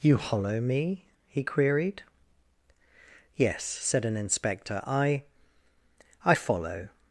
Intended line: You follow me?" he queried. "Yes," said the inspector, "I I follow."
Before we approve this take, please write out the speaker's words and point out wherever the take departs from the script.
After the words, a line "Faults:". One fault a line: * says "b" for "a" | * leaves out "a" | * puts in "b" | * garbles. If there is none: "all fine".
You hollow me?" he queried. "Yes," said an inspector, "I I follow."
Faults:
* says "hollow" for "follow"
* says "an" for "the"